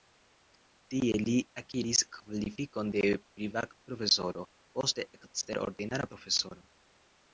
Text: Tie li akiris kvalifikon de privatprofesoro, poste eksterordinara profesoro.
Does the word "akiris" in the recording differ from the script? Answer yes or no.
no